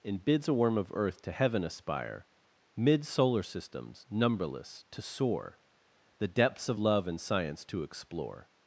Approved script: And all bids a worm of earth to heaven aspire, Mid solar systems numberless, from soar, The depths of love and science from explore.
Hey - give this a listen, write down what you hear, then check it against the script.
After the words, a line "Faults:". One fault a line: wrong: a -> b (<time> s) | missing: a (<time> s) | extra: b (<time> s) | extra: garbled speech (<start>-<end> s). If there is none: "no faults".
And bids a worm of earth to heaven aspire, Mid solar systems numberless, to soar, The depths of love and science to explore.
Faults:
missing: all (0.2 s)
wrong: from -> to (4.9 s)
wrong: from -> to (7.7 s)